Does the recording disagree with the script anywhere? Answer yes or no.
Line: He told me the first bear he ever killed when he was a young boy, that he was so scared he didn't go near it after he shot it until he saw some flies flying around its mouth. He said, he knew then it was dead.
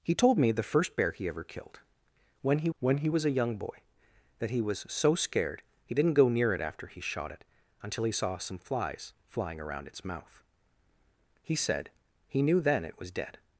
yes